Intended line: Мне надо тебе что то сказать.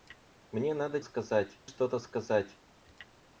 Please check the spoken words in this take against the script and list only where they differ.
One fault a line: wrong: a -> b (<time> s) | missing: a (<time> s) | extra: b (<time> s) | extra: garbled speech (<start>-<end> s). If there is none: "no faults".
wrong: тебе -> сказать (1.0 s)